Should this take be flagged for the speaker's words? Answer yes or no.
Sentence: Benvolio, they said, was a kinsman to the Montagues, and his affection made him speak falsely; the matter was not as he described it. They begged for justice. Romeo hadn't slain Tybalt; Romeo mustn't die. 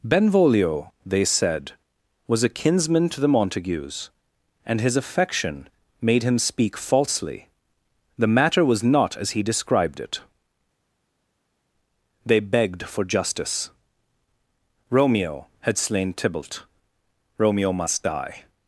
yes